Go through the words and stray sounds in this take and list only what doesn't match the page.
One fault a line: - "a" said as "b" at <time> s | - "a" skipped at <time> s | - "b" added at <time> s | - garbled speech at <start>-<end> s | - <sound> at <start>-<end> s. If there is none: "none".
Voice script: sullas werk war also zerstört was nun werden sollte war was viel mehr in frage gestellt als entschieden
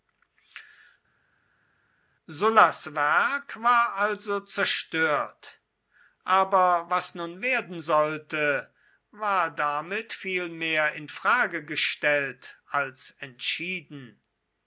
- "aber" added at 6.2 s
- "was" said as "damit" at 9.5 s